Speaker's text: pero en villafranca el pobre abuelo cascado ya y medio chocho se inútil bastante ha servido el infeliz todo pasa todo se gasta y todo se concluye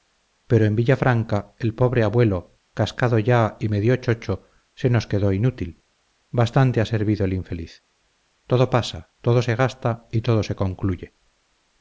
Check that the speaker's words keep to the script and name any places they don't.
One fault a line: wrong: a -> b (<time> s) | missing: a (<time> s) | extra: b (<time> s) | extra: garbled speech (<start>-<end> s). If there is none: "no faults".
extra: nos quedó (4.9 s)